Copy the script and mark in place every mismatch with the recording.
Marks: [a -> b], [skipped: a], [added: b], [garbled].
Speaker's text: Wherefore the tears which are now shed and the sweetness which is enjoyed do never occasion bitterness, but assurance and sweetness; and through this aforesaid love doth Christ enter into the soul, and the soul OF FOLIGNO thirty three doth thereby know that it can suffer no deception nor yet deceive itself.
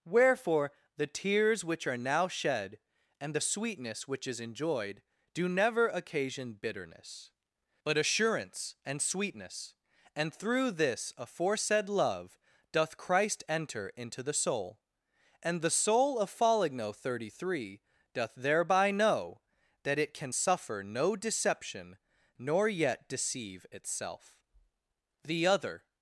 Wherefore the tears which are now shed and the sweetness which is enjoyed do never occasion bitterness, but assurance and sweetness; and through this aforesaid love doth Christ enter into the soul, and the soul OF FOLIGNO thirty three doth thereby know that it can suffer no deception nor yet deceive itself. [added: The other]